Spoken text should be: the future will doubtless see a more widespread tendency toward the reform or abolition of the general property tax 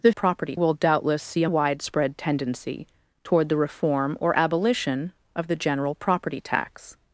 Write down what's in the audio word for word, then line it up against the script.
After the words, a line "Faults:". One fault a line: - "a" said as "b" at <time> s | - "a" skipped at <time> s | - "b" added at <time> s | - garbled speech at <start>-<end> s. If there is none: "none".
the property will doubtless see a widespread tendency toward the reform or abolition of the general property tax
Faults:
- "future" said as "property" at 0.1 s
- "more" skipped at 1.5 s